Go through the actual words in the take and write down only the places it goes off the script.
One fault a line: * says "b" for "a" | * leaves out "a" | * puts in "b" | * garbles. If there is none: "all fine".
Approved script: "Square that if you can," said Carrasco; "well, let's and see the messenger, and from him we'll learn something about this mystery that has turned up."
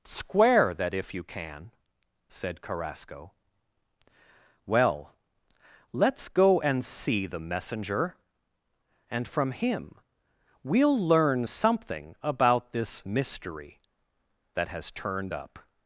* puts in "go"